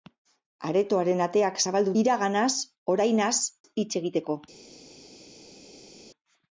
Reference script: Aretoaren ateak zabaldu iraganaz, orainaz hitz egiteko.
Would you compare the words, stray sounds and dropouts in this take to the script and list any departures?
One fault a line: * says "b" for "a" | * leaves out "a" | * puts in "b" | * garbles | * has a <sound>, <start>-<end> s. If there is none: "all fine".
all fine